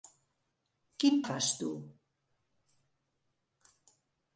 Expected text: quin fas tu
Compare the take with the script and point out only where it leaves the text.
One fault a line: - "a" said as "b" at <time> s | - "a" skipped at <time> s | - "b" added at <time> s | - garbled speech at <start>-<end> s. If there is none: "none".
none